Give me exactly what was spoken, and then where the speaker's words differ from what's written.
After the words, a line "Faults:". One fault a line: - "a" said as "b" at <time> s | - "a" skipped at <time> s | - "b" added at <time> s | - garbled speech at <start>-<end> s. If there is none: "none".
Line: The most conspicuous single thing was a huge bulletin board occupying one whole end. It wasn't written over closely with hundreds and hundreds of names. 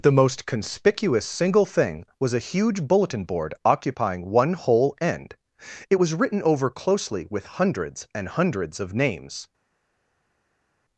The most conspicuous single thing was a huge bulletin board occupying one whole end. It was written over closely with hundreds and hundreds of names.
Faults:
- "wasn't" said as "was" at 6.0 s